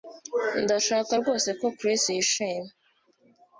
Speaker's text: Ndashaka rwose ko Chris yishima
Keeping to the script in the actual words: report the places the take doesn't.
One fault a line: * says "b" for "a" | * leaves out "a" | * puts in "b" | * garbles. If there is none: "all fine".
all fine